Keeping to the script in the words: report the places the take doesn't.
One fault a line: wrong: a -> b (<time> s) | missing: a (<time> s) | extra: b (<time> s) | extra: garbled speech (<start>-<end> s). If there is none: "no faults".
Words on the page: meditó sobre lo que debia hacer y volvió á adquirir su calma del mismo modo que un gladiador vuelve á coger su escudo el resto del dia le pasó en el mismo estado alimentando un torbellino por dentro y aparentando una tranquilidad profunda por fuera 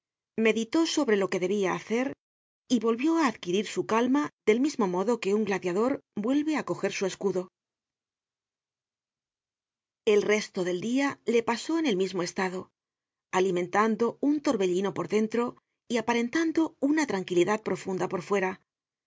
no faults